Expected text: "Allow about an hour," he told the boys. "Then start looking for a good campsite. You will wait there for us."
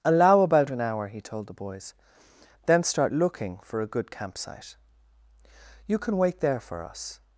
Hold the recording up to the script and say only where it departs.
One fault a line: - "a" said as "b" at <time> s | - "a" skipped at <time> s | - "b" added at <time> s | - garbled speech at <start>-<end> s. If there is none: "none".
- "will" said as "can" at 6.0 s